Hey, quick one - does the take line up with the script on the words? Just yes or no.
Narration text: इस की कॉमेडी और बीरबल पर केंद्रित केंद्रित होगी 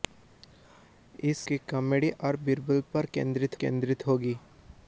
yes